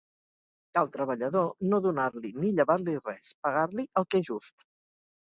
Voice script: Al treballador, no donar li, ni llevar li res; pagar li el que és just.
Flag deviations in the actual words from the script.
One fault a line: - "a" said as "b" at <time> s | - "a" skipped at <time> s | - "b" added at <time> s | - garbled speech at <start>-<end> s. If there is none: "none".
none